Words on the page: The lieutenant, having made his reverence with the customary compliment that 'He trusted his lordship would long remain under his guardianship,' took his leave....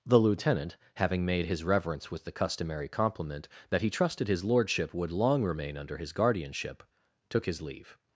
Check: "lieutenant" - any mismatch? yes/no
no